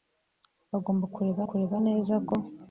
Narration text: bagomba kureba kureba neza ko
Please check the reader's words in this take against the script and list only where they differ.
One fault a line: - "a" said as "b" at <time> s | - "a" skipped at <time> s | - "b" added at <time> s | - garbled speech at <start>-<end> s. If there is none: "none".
none